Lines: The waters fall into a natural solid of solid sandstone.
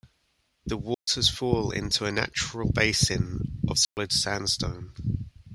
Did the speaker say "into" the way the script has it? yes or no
yes